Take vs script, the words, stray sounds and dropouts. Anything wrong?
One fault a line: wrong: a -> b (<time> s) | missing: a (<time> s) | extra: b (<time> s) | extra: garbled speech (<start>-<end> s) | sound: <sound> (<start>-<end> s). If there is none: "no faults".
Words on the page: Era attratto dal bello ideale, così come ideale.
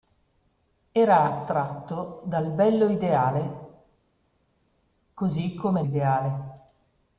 no faults